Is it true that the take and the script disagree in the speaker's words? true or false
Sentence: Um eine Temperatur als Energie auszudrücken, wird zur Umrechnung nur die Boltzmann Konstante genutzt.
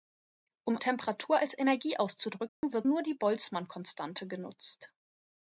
true